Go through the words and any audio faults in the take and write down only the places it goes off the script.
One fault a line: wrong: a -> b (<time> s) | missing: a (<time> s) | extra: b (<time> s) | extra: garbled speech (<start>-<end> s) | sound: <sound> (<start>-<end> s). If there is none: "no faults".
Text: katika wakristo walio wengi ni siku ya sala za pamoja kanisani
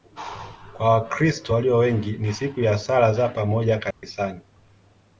wrong: katika -> kwa (0.8 s)
sound: dropout (3.9-4.0 s)